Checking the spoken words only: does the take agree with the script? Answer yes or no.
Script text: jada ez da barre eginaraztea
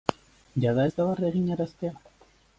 yes